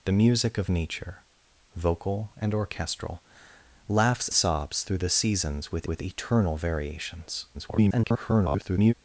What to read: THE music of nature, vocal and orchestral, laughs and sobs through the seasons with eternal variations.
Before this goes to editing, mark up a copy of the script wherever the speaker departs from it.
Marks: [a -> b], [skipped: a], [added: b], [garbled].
THE music of nature, vocal and orchestral, laughs [skipped: and] sobs through the seasons with [added: with] eternal variations. [garbled]